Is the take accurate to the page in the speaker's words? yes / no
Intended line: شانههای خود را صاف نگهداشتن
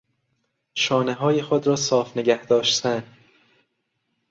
yes